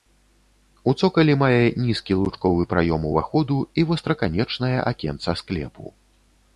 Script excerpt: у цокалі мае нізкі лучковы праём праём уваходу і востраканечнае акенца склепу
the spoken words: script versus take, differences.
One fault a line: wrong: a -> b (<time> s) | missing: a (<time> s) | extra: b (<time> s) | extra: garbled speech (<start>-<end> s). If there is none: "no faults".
missing: праём (3.1 s)